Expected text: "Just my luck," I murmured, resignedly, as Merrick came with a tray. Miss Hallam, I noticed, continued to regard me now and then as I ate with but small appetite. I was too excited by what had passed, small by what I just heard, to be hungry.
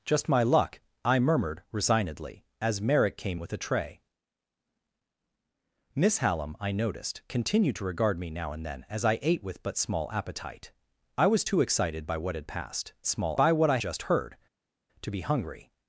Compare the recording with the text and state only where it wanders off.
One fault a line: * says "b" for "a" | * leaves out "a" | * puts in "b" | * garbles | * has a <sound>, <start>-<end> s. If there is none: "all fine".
all fine